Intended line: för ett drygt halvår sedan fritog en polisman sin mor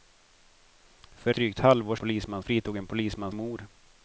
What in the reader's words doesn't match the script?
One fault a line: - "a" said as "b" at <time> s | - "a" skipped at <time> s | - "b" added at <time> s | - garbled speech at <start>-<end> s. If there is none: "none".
- "ett" skipped at 1.3 s
- "sedan" said as "polisman" at 2.0 s
- "sin" skipped at 3.3 s